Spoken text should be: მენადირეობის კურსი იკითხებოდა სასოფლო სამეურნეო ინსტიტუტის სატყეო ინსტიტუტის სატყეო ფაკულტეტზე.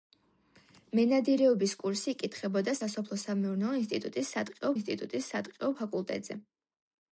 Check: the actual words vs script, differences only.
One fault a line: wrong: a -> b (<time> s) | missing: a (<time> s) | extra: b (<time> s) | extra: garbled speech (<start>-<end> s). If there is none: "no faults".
no faults